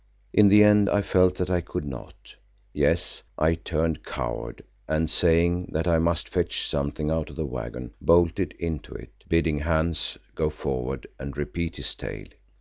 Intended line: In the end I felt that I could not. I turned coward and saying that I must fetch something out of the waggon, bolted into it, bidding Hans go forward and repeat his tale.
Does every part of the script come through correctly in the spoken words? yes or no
no